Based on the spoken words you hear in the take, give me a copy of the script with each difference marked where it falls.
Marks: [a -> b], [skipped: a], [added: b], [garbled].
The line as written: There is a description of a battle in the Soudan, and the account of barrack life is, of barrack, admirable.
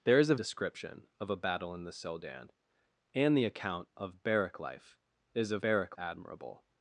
There is a description of a battle in the Soudan, and the account of barrack life is, of barrack, admirable.